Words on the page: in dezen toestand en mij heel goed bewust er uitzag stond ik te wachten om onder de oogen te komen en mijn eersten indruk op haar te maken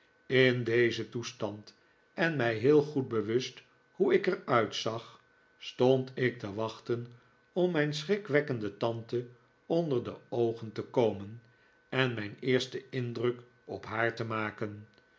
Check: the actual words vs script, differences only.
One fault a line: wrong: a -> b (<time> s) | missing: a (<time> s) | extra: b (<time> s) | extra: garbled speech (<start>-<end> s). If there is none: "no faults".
extra: hoe ik (3.9 s)
extra: mijn schrikwekkende tante (7.7 s)